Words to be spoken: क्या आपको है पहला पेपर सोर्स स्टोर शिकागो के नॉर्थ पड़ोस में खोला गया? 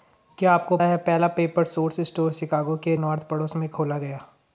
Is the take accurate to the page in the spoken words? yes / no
yes